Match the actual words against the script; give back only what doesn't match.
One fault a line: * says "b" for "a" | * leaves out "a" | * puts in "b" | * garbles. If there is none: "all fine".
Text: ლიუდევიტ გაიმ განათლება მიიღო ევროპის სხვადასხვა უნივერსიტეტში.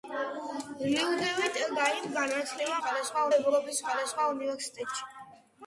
* says "სხვადასხვა" for "მიიღო"